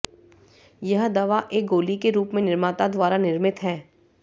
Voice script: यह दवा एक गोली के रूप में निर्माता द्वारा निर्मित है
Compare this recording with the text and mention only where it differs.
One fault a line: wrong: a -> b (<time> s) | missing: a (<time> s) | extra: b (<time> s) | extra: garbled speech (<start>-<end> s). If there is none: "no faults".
no faults